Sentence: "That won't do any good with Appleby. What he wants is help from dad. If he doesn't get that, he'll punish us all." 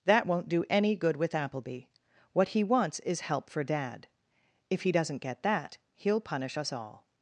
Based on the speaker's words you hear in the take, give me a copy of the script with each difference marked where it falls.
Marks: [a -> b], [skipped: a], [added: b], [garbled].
"That won't do any good with Appleby. What he wants is help [from -> for] dad. If he doesn't get that, he'll punish us all."